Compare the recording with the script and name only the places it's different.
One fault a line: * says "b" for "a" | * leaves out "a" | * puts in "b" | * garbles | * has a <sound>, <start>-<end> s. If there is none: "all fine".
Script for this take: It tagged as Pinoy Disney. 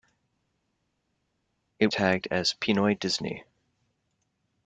all fine